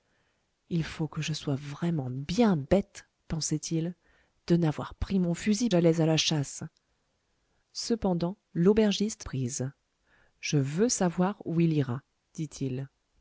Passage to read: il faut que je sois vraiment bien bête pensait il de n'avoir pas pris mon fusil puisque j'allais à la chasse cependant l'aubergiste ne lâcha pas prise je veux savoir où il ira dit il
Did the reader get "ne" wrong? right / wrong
wrong